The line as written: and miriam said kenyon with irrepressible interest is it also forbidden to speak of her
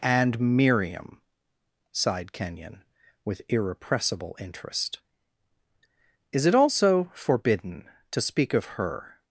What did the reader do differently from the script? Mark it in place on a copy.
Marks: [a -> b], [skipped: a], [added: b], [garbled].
and miriam [said -> sighed] kenyon with irrepressible interest is it also forbidden to speak of her